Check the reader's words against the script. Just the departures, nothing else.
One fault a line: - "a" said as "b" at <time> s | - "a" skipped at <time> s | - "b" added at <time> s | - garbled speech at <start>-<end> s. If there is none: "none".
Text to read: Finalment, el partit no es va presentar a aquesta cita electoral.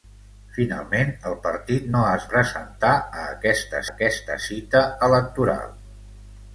- "va" skipped at 2.3 s
- "aquesta" added at 3.9 s